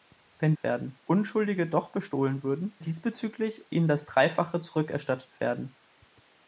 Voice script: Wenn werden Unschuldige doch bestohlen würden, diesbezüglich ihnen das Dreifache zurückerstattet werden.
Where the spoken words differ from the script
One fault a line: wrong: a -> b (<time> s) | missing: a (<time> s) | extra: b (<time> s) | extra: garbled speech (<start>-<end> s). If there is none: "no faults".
no faults